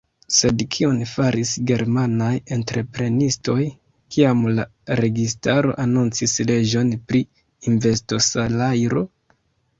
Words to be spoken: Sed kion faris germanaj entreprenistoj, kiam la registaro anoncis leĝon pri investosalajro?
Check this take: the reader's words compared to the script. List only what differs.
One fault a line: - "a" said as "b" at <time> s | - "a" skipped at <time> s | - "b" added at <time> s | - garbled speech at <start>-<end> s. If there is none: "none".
none